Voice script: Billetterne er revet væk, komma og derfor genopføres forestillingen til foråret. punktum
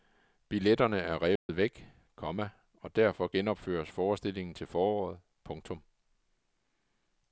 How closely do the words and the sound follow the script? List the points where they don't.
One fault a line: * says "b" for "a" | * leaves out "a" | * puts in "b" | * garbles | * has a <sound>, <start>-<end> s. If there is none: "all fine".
* has a dropout, 1.4-1.5 s